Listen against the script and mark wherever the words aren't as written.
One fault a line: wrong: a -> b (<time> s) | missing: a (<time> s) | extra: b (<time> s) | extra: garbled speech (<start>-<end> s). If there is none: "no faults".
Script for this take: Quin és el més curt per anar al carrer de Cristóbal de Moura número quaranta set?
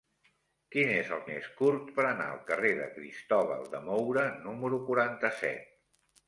no faults